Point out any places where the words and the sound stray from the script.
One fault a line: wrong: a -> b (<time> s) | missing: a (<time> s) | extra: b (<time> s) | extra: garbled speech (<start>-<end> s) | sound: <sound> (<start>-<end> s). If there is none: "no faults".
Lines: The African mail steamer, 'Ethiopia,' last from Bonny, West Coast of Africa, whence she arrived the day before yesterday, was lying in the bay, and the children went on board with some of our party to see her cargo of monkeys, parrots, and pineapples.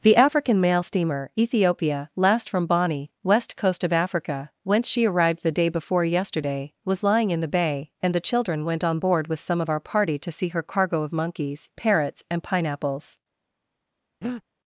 sound: breath (14.2-14.4 s)